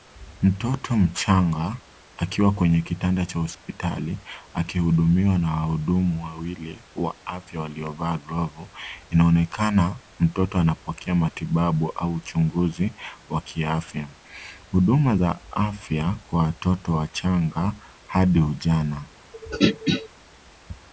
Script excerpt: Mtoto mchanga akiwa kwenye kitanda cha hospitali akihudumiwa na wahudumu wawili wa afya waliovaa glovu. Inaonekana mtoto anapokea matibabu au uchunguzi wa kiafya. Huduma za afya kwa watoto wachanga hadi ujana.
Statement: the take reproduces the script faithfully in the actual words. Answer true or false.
true